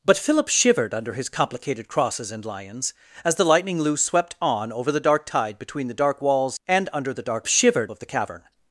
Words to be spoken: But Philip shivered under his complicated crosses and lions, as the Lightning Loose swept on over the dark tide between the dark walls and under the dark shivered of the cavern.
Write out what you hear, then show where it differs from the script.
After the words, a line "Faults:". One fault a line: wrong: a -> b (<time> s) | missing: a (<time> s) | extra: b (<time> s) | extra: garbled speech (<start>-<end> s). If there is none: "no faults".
But Philip shivered under his complicated crosses and lions, as the Lightning Loose swept on over the dark tide between the dark walls and under the dark shivered of the cavern.
Faults:
no faults